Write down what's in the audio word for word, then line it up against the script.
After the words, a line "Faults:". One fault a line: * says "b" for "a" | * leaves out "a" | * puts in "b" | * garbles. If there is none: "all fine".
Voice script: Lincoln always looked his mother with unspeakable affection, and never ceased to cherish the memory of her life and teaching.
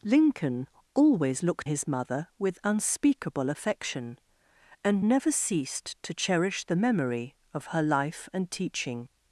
Lincoln always looked his mother with unspeakable affection, and never ceased to cherish the memory of her life and teaching.
Faults:
all fine